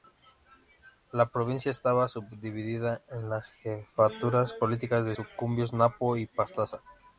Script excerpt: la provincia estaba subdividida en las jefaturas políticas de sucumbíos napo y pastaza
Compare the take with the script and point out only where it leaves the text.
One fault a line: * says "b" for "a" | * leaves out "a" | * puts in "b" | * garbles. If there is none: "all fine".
all fine